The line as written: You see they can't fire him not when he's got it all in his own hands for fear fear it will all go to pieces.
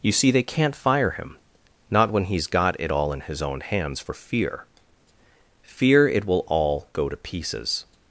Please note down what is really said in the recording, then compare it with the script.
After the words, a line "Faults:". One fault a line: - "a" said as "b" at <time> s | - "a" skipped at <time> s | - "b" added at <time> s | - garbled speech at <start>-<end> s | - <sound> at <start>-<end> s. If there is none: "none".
You see they can't fire him not when he's got it all in his own hands for fear fear it will all go to pieces.
Faults:
none